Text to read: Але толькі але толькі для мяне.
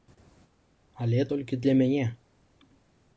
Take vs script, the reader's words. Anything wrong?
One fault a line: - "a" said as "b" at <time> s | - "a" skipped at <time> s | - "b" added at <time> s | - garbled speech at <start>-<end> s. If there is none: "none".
- "але толькі" skipped at 1.6 s